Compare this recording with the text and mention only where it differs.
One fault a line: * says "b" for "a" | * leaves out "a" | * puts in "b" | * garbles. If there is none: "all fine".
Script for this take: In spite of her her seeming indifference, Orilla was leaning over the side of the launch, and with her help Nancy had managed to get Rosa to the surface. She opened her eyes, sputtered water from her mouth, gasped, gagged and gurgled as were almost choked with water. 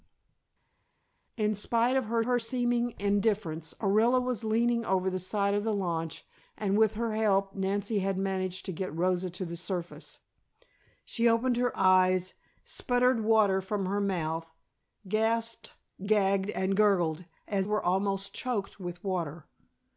all fine